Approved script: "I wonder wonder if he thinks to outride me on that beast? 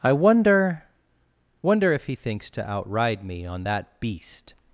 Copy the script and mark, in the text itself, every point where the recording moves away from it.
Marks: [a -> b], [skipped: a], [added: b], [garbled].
"I wonder wonder if he thinks to outride me on that beast?